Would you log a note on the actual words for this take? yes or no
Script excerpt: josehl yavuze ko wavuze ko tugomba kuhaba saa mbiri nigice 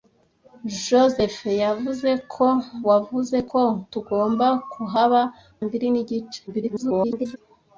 yes